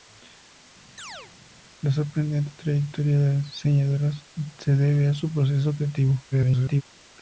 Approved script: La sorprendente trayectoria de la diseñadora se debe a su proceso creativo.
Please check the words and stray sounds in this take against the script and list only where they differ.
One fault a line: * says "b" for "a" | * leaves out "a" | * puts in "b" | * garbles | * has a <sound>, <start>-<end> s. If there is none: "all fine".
* has a chirp, 1.0-1.3 s
* garbles